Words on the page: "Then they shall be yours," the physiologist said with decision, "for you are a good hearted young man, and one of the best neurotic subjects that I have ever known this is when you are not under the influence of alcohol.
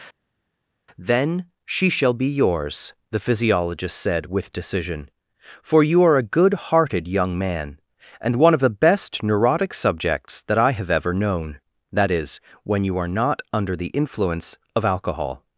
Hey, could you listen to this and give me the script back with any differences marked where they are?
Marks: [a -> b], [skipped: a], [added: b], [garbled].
"Then [they -> she] shall be yours," the physiologist said with decision, "for you are a good hearted young man, and one of the best neurotic subjects that I have ever known [this -> that] is when you are not under the influence of alcohol.